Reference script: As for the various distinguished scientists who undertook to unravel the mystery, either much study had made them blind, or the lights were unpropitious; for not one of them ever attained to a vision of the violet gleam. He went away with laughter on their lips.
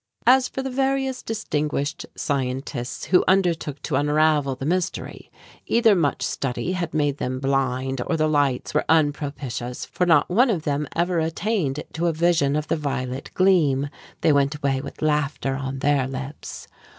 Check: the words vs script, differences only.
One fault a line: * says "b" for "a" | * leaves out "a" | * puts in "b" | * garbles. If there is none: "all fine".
* says "They" for "He"